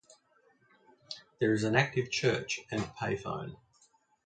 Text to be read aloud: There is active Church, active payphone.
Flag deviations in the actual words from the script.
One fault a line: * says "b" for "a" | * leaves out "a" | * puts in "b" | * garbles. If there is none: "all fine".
* puts in "an"
* says "and" for "active"